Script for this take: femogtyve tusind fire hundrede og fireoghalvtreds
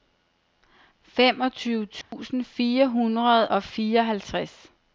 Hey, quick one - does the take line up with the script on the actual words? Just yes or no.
yes